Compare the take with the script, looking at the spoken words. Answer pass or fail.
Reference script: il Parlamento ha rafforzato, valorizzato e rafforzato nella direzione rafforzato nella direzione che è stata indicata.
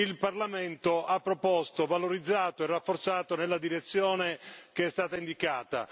fail